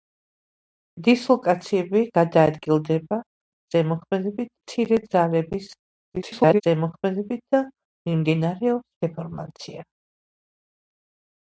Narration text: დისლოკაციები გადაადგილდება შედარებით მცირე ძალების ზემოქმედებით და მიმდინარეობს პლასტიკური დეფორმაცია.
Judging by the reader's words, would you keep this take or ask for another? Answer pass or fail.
fail